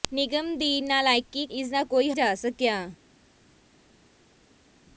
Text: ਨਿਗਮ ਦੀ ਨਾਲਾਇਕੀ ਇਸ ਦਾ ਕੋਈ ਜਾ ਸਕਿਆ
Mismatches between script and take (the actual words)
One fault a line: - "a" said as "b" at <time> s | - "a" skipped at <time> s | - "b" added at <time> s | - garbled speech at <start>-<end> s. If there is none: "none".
none